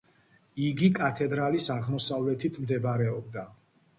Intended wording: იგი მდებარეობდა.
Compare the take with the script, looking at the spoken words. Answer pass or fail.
fail